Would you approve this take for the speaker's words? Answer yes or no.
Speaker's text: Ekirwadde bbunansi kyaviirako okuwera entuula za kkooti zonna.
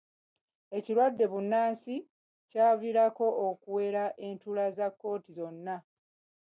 yes